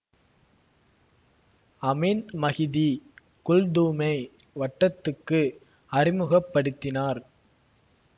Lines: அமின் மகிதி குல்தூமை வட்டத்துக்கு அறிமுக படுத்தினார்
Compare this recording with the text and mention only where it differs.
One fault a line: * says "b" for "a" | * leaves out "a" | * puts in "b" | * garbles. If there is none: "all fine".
all fine